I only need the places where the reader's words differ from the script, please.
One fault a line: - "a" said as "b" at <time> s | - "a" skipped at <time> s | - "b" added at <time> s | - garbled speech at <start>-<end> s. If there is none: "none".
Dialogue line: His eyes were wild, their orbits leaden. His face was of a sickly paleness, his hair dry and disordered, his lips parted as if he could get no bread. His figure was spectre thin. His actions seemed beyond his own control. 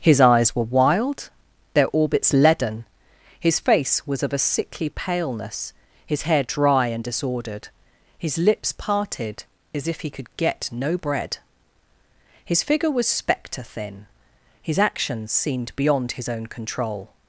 none